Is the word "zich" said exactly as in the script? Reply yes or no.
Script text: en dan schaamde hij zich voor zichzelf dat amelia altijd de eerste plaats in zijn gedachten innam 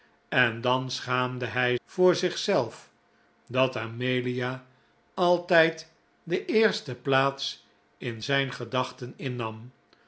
no